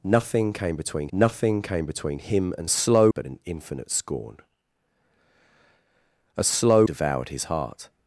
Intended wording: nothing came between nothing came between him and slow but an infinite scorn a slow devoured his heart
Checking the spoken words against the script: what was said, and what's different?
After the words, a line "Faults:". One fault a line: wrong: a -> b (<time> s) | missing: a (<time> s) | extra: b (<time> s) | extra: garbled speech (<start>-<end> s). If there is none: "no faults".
nothing came between nothing came between him and slow but an infinite scorn a slow devoured his heart
Faults:
no faults